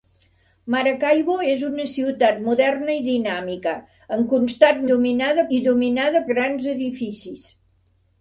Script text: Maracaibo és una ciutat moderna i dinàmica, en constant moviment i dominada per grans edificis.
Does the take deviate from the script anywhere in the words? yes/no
yes